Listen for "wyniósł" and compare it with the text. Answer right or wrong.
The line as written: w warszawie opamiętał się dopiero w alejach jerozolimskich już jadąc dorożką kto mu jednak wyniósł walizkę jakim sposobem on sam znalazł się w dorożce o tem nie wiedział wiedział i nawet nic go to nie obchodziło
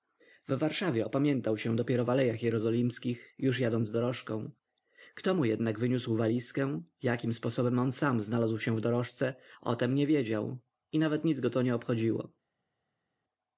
right